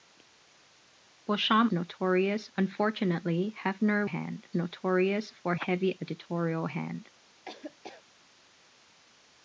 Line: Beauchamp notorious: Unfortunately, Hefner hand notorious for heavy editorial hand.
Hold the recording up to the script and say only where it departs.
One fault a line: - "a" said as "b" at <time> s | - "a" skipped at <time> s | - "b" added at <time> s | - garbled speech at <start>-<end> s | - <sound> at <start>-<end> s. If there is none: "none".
- laugh at 7.5-8.1 s